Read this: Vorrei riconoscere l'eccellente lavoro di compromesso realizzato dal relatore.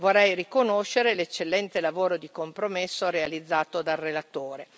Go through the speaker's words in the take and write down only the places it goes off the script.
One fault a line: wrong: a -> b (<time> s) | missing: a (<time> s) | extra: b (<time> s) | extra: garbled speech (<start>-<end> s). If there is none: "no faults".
no faults